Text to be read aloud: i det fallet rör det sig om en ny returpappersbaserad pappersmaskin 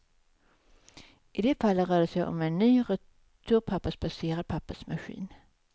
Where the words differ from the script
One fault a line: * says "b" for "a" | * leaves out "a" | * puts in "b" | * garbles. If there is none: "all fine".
all fine